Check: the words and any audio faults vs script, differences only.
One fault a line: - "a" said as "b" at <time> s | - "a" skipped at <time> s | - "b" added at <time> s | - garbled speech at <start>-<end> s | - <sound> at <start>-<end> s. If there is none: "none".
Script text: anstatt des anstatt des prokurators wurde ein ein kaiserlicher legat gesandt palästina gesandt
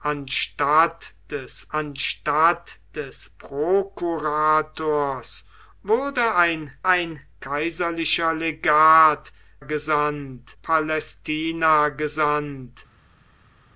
none